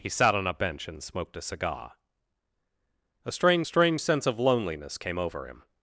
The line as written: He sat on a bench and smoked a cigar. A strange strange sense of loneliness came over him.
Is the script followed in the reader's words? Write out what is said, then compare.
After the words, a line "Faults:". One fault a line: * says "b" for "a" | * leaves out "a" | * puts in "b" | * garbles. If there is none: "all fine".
He sat on a bench and smoked a cigar. A strange strange sense of loneliness came over him.
Faults:
all fine